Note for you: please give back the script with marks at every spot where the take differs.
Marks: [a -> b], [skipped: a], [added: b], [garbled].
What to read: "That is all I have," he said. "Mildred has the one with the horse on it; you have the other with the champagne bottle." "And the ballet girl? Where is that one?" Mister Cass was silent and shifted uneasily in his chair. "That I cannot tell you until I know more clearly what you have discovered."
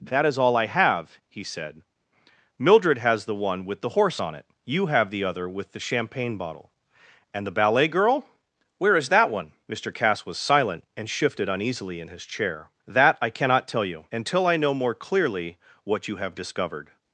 "That is all I have," he said. "Mildred has the one with the horse on it; you have the other with the champagne bottle." "And the ballet girl? Where is that one?" Mister Cass was silent and shifted uneasily in his chair. "That I cannot tell you until I know more clearly what you have discovered."